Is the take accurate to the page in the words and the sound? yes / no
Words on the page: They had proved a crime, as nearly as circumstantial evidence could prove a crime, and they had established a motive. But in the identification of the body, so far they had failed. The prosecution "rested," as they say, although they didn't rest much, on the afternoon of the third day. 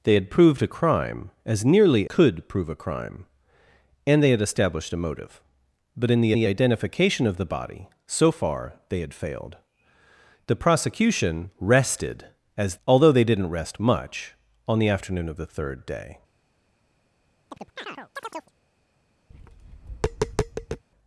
no